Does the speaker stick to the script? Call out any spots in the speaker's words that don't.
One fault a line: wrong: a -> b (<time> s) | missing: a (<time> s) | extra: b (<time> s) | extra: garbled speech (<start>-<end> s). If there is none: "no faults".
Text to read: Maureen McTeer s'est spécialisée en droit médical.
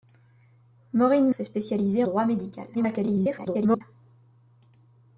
missing: McTeer (1.3 s)
missing: en (2.0 s)
extra: garbled speech (2.7-3.8 s)